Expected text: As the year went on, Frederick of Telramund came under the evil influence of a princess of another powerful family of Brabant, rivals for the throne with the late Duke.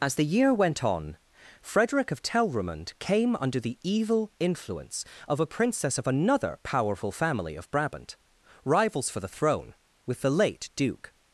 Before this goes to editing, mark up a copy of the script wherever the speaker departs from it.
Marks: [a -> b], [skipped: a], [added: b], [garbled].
As the year went on, Frederick of Telramund came under the evil influence of a princess of another powerful family of Brabant, rivals for the throne with the late Duke.